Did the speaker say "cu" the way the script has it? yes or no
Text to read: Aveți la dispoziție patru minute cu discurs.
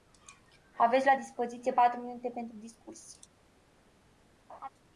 no